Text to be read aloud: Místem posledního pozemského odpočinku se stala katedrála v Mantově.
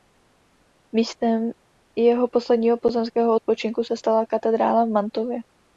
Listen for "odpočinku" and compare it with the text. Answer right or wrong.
right